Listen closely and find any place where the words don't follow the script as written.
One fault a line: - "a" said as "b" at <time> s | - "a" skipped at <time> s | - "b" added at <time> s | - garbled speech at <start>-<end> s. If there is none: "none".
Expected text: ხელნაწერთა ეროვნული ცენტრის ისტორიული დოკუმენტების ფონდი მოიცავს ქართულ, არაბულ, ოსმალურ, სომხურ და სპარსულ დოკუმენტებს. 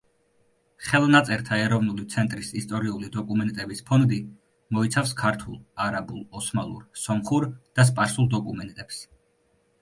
none